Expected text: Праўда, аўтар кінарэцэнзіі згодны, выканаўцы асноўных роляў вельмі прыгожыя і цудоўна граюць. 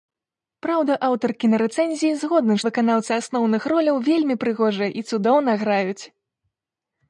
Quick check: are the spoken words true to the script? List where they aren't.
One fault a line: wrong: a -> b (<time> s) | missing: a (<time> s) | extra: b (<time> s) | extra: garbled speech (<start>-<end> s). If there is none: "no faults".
no faults